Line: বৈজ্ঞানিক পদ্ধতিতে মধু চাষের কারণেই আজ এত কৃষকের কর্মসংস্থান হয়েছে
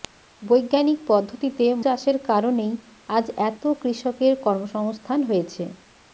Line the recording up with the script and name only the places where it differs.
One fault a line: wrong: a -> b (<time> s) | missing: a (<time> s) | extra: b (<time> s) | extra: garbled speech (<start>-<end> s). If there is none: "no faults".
missing: মধু (1.6 s)